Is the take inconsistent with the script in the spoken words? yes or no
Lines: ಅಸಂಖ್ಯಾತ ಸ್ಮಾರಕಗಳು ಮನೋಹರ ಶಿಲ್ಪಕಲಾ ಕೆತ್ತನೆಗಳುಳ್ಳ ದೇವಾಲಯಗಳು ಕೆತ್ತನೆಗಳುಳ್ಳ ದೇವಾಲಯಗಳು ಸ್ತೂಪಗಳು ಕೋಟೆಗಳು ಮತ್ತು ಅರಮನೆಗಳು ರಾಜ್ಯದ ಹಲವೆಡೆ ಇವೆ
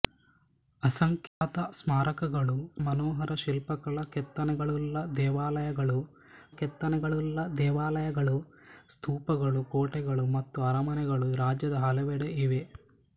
no